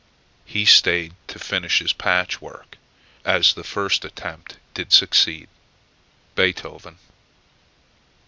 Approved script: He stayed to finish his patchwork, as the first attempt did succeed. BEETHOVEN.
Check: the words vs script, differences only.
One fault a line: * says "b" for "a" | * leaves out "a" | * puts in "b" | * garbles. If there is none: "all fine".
all fine